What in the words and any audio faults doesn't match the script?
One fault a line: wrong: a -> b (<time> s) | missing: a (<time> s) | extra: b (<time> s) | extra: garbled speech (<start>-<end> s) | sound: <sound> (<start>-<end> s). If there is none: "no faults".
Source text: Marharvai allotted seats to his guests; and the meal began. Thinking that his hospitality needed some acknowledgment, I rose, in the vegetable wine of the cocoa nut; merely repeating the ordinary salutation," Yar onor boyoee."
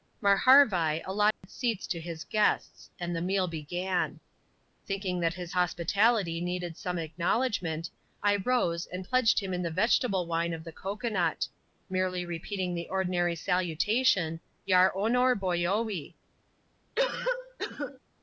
sound: dropout (1.3-1.4 s)
extra: and pledged him (8.8 s)
sound: cough (17.0-18.0 s)